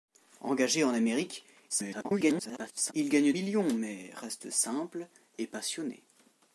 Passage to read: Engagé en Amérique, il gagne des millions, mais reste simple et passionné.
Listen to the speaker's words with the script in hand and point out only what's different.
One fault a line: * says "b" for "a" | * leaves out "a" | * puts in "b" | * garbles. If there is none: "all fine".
* garbles
* leaves out "des"